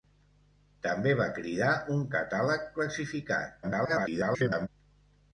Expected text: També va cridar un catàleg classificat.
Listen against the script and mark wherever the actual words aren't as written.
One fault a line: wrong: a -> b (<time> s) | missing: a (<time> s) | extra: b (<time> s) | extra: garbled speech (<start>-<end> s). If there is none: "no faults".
extra: garbled speech (3.6-4.7 s)